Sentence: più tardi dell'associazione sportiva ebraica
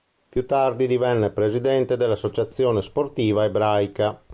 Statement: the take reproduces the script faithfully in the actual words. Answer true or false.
false